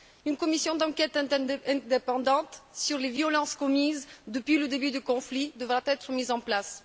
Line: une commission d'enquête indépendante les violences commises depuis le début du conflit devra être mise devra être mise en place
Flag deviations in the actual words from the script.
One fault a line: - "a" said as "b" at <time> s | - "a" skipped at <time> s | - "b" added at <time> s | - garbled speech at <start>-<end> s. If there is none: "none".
- "sur" added at 2.7 s
- "devra être mise" skipped at 6.3 s